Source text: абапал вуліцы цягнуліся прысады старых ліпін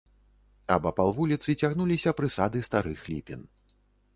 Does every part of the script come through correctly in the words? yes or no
yes